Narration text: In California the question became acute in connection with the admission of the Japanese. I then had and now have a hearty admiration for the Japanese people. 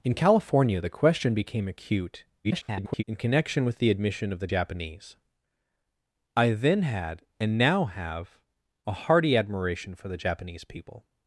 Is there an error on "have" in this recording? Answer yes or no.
no